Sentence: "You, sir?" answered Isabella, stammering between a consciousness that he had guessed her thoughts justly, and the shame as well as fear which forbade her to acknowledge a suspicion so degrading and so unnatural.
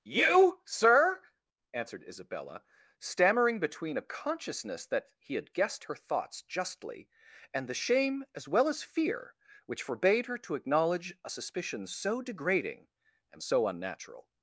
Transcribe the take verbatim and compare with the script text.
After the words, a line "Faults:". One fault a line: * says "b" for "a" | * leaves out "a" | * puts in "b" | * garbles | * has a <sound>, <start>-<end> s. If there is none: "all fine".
"You, sir?" answered Isabella, stammering between a consciousness that he had guessed her thoughts justly, and the shame as well as fear which forbade her to acknowledge a suspicion so degrading and so unnatural.
Faults:
all fine